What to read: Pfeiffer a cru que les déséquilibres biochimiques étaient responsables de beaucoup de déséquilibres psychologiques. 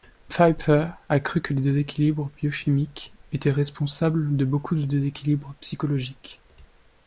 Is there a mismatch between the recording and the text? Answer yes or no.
no